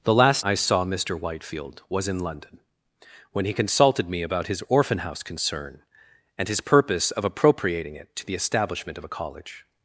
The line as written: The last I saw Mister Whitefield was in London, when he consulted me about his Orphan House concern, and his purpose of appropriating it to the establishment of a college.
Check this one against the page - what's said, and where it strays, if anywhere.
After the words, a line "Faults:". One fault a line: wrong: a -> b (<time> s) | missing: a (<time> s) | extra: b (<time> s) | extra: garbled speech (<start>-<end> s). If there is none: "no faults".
The last I saw Mister Whitefield was in London, when he consulted me about his Orphan House concern, and his purpose of appropriating it to the establishment of a college.
Faults:
no faults